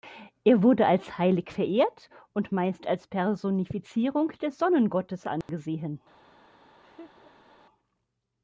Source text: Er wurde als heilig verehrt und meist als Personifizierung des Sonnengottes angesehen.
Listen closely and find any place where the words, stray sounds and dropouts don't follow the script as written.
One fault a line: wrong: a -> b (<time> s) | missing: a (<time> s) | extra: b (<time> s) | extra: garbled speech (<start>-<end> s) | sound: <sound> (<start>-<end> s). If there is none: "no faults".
sound: dropout (5.4-5.5 s)
sound: laugh (6.8-7.5 s)